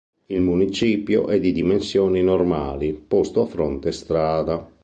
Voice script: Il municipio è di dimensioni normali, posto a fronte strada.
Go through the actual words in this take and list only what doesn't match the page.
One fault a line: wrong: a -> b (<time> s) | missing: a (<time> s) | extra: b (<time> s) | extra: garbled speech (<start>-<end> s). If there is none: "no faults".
no faults